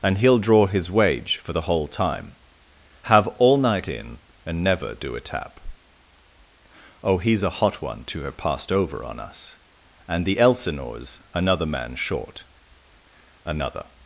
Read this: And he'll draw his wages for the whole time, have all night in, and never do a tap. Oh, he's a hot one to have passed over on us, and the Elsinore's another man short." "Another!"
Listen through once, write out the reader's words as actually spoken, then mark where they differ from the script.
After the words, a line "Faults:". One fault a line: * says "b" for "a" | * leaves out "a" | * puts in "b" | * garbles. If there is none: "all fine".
And he'll draw his wage for the whole time, have all night in, and never do a tap. Oh, he's a hot one to have passed over on us, and the Elsinore's another man short." "Another!"
Faults:
* says "wage" for "wages"